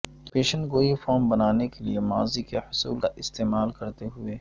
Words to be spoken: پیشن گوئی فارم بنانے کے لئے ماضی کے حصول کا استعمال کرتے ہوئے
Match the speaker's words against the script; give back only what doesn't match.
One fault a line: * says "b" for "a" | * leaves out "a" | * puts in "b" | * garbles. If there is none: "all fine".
all fine